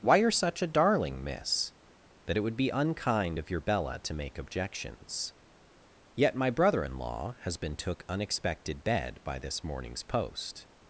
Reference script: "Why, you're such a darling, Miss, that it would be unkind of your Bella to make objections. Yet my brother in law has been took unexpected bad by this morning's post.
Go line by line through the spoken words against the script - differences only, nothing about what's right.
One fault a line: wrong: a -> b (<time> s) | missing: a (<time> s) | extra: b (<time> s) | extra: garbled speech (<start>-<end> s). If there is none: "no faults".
wrong: bad -> bed (8.8 s)